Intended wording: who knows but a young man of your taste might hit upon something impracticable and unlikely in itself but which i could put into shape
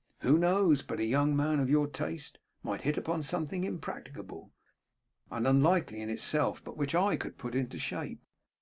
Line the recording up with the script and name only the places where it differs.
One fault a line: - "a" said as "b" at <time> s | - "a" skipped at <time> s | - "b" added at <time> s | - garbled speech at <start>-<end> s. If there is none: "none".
none